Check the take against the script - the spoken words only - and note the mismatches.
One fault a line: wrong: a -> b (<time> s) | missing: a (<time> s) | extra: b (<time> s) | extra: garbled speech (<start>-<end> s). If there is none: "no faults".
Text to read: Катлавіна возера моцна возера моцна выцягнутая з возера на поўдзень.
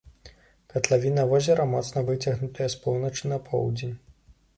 missing: возера моцна (2.0 s)
wrong: возера -> поўначы (2.8 s)